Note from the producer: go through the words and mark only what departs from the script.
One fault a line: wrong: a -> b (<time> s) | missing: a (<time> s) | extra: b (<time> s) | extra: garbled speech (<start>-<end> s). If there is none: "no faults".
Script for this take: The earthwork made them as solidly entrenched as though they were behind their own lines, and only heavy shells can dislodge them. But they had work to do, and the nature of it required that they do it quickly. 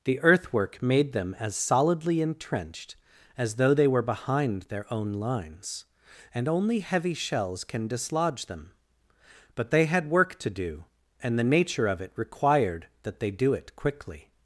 no faults